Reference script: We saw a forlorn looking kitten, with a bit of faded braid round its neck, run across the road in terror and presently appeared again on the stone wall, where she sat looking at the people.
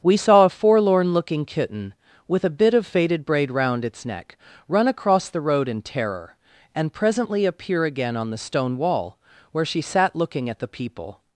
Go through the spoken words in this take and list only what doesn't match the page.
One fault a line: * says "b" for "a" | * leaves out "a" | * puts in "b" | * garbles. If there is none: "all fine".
* says "appear" for "appeared"